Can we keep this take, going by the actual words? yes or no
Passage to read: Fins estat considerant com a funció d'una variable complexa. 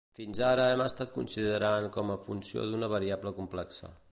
no